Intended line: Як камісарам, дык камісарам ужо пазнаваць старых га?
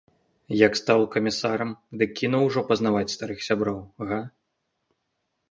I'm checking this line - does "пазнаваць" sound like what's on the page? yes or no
yes